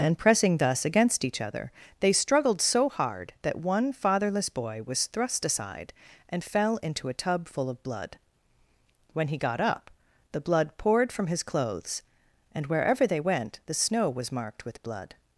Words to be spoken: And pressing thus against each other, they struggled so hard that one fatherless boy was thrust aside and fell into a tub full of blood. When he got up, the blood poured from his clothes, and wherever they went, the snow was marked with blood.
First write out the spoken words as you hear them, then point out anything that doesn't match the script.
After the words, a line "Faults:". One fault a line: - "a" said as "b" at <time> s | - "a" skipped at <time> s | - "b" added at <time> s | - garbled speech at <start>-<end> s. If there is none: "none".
And pressing thus against each other, they struggled so hard that one fatherless boy was thrust aside and fell into a tub full of blood. When he got up, the blood poured from his clothes, and wherever they went, the snow was marked with blood.
Faults:
none